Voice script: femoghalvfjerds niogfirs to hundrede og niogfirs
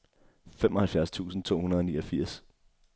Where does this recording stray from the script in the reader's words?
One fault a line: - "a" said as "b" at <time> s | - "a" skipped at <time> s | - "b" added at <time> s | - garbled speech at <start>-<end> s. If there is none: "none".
- "niogfirs" said as "tusind" at 1.1 s